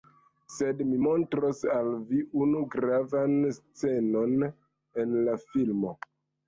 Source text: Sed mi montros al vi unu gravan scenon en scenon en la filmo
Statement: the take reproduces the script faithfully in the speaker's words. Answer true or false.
false